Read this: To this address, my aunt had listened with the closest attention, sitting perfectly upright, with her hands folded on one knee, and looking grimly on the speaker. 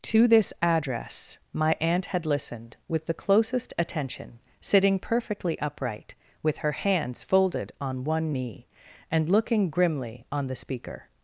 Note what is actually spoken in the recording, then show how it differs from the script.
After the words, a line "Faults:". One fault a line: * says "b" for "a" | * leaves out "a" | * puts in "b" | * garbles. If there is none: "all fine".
To this address, my aunt had listened with the closest attention, sitting perfectly upright, with her hands folded on one knee, and looking grimly on the speaker.
Faults:
all fine